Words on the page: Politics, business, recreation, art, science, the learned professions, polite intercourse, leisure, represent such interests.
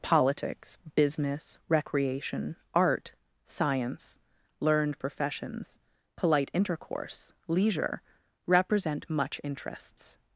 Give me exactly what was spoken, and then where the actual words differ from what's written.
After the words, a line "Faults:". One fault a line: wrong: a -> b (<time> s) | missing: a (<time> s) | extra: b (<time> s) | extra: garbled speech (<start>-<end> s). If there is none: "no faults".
Politics, business, recreation, art, science, learned professions, polite intercourse, leisure, represent much interests.
Faults:
missing: the (4.2 s)
wrong: such -> much (9.1 s)